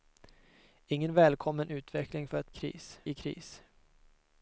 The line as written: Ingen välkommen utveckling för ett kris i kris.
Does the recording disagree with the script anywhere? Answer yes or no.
no